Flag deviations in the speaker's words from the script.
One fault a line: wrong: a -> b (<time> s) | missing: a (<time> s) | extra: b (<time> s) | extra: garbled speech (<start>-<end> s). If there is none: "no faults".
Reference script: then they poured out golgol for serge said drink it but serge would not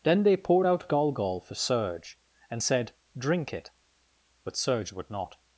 extra: and (2.5 s)